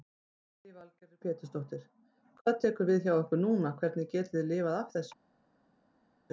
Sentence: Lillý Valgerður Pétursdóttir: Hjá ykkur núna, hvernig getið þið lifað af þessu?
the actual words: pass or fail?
fail